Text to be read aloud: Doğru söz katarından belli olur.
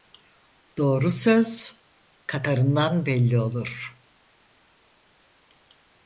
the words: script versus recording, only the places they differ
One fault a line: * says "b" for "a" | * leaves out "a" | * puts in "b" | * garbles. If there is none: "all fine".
all fine